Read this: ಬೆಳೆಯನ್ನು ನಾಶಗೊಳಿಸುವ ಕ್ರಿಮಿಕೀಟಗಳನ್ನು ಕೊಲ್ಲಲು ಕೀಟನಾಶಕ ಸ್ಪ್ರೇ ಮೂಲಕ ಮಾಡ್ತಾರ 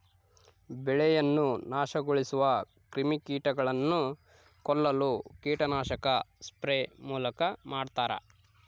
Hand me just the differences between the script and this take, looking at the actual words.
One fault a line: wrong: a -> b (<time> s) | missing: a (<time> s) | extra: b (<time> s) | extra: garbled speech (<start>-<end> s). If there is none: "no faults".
no faults